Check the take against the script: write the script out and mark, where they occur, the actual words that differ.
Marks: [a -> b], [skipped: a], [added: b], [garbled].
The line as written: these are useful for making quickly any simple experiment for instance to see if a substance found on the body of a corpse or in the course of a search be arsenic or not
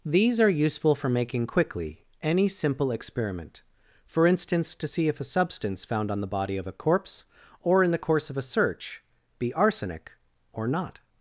these are useful for making quickly any simple experiment for instance to see if a substance found on the body of a corpse or in the course of a search be arsenic or not